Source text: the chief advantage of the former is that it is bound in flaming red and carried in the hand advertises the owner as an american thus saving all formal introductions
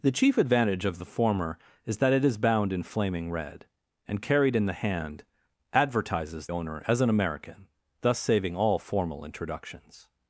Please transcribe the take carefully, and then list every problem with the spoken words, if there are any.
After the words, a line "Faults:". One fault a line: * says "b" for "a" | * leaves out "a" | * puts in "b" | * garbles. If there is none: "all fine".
the chief advantage of the former is that it is bound in flaming red and carried in the hand advertises owner as an american thus saving all formal introductions
Faults:
* leaves out "the"